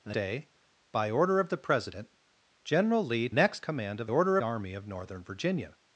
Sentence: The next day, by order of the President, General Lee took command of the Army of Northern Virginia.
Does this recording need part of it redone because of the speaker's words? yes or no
yes